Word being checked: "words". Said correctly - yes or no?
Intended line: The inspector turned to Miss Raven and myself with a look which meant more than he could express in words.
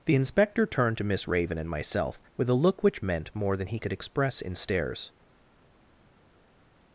no